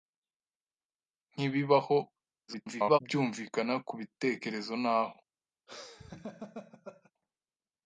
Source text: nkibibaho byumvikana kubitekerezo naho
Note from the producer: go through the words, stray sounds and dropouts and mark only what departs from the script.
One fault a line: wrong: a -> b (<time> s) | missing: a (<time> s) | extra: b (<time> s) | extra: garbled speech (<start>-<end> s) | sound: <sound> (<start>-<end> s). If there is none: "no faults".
extra: garbled speech (2.5-3.0 s)
sound: laugh (5.7-7.1 s)